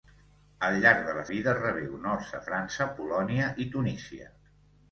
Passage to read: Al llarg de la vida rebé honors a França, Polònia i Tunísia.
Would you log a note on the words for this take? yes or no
no